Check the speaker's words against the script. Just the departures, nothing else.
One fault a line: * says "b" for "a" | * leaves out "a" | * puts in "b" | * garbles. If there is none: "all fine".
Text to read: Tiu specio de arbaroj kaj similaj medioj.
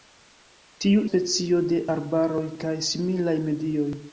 all fine